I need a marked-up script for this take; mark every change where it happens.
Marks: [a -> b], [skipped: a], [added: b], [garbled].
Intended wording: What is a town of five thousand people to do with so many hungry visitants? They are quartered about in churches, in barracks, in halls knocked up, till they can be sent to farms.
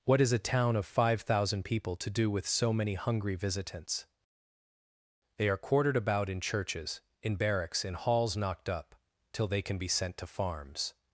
What is a town of five thousand people to do with so many hungry visitants? They are quartered about in churches, in barracks, in halls knocked up, till they can be sent to farms.